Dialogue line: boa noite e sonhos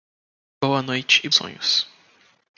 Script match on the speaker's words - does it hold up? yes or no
yes